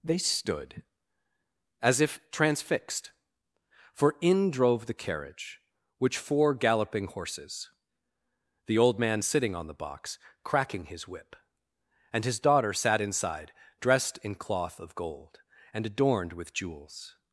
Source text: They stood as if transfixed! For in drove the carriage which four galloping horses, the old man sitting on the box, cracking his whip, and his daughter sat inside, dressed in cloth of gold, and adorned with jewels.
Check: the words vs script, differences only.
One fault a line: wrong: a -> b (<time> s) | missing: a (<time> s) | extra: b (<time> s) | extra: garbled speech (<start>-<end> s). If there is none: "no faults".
no faults